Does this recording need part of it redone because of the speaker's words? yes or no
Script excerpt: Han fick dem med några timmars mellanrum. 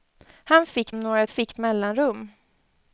yes